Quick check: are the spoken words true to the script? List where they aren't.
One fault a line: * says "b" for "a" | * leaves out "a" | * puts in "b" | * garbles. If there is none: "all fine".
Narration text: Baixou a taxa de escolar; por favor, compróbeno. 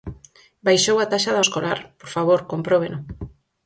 all fine